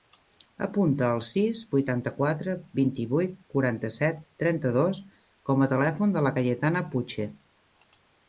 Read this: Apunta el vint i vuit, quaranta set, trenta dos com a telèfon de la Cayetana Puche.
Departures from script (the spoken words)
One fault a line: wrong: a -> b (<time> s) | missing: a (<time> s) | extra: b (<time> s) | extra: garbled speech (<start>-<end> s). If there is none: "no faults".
extra: sis vuitanta quatre (1.3 s)